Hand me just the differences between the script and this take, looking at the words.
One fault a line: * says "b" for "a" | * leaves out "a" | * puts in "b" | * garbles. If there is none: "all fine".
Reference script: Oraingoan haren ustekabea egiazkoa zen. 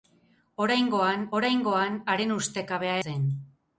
* puts in "oraingoan"
* leaves out "egiazkoa"